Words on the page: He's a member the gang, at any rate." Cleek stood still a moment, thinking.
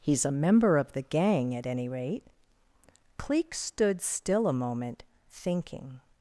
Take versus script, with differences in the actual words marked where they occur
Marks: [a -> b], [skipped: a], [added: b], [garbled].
He's a member [added: of] the gang, at any rate." Cleek stood still a moment, thinking.